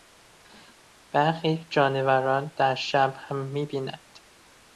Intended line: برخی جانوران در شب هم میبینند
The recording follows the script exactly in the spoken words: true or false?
true